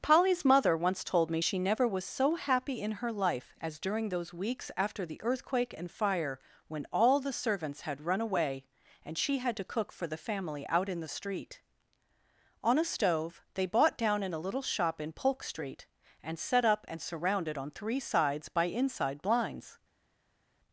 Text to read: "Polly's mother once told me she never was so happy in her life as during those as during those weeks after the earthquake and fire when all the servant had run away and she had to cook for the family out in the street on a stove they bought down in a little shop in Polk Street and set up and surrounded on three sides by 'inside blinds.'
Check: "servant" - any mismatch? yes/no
yes